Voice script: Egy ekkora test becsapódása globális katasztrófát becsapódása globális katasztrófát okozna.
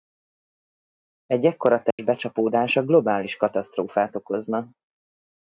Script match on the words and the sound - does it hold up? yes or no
no